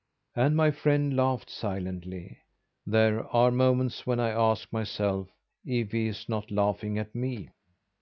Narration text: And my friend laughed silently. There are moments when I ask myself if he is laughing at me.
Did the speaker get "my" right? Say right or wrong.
right